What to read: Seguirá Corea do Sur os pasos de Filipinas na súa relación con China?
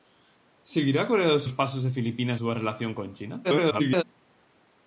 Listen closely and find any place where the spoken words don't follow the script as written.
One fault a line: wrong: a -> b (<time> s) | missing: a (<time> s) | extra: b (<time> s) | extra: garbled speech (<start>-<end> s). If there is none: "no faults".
missing: Sur (1.4 s)
missing: na (2.4 s)
extra: garbled speech (3.4-4.0 s)